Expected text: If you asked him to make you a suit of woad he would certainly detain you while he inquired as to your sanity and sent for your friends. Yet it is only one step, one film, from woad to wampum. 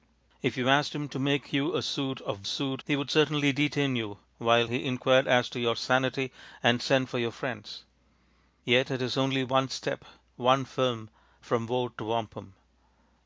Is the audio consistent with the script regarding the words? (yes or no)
no